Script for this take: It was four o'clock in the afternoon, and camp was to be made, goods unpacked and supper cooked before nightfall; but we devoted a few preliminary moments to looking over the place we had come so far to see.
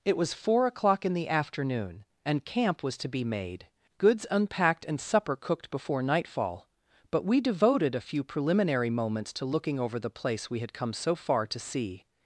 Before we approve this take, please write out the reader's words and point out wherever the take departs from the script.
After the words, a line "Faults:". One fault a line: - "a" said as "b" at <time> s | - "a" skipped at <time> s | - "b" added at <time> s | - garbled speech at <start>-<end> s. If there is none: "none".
It was four o'clock in the afternoon, and camp was to be made, goods unpacked and supper cooked before nightfall; but we devoted a few preliminary moments to looking over the place we had come so far to see.
Faults:
none